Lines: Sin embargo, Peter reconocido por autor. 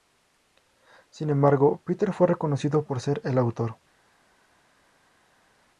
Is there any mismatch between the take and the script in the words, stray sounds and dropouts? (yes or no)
yes